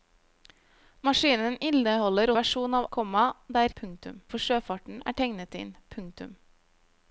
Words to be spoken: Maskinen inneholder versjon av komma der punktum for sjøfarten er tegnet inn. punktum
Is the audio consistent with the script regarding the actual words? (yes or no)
yes